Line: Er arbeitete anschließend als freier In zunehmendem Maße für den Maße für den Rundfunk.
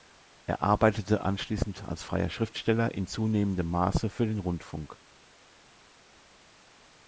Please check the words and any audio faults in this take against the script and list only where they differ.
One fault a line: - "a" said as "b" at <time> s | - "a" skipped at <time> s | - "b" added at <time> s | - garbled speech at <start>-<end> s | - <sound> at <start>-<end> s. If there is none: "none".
- "Schriftsteller" added at 2.3 s
- "Maße für den" skipped at 4.4 s